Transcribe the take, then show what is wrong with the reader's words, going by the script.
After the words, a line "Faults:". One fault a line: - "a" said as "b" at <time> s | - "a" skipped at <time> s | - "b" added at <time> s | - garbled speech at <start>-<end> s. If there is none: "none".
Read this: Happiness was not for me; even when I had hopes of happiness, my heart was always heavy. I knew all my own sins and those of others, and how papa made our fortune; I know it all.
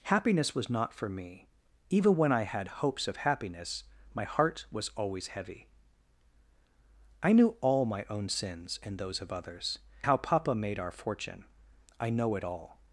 Happiness was not for me; even when I had hopes of happiness, my heart was always heavy. I knew all my own sins and those of others, how papa made our fortune; I know it all.
Faults:
- "and" skipped at 9.8 s